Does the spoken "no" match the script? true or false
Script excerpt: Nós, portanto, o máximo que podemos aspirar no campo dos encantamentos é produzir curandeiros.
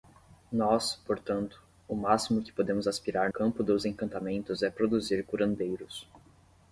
false